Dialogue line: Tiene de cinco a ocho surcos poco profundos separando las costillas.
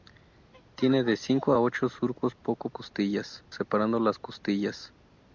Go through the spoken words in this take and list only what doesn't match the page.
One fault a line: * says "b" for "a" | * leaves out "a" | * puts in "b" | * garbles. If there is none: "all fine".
* says "costillas" for "profundos"